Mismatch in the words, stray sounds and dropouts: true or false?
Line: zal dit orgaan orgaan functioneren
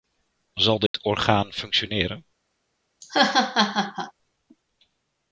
true